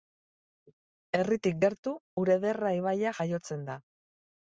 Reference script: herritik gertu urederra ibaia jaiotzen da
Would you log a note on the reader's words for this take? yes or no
no